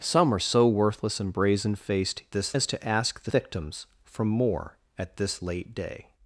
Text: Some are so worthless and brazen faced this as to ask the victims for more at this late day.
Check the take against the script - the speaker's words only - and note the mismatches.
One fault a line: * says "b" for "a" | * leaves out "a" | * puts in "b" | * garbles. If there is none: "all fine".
all fine